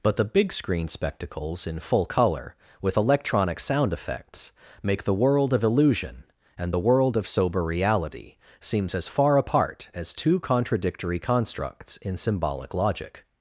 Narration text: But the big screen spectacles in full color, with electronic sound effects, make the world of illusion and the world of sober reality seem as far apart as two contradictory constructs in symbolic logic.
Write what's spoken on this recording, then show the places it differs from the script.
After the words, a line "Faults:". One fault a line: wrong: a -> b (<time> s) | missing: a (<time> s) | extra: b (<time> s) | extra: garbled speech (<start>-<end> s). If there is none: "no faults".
But the big screen spectacles in full color, with electronic sound effects, make the world of illusion and the world of sober reality seems as far apart as two contradictory constructs in symbolic logic.
Faults:
wrong: seem -> seems (8.6 s)